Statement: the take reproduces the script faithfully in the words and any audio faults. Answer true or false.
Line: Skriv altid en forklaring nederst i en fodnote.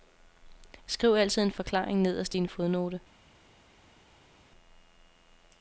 true